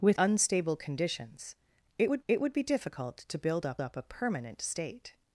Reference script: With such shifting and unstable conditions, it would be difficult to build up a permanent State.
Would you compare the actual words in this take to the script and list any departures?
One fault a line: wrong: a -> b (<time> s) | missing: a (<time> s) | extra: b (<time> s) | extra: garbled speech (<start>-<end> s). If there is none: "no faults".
missing: such shifting and (0.2 s)
extra: it would (2.3 s)
extra: up (3.8 s)